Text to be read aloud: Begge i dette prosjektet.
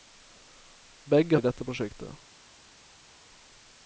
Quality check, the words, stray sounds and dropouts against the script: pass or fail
pass